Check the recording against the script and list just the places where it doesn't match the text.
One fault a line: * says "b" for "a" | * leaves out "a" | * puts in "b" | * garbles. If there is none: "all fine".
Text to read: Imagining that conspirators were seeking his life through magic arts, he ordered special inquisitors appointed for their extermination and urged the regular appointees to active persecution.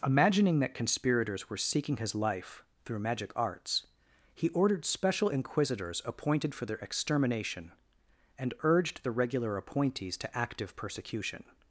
all fine